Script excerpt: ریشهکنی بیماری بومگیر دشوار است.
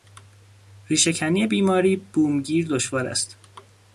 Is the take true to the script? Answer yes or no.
yes